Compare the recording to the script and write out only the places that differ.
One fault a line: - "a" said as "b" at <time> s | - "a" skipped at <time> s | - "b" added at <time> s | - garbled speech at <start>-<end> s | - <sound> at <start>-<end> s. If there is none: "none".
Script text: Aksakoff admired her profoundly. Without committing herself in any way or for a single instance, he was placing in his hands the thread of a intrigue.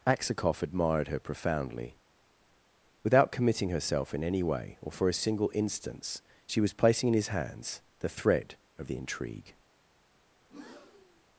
- "he" said as "she" at 6.5 s
- "a" said as "the" at 8.9 s
- breath at 10.4-11.2 s